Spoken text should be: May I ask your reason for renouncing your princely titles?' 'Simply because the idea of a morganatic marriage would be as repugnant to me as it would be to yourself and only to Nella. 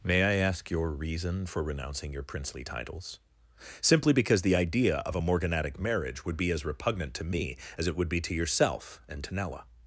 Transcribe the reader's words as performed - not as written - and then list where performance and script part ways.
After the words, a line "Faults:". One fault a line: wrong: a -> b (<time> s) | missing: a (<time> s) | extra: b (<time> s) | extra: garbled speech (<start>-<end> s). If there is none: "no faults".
May I ask your reason for renouncing your princely titles?' 'Simply because the idea of a morganatic marriage would be as repugnant to me as it would be to yourself and to Nella.
Faults:
missing: only (9.2 s)